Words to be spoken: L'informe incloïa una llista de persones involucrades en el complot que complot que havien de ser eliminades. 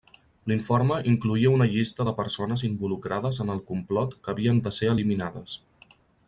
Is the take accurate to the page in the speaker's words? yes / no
no